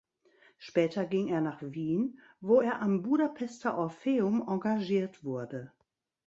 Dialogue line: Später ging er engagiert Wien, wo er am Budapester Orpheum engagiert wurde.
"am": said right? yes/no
yes